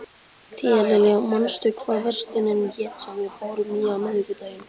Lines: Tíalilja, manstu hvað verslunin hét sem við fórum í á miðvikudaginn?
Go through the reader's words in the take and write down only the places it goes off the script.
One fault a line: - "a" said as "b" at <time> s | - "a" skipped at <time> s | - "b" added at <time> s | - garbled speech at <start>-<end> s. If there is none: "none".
none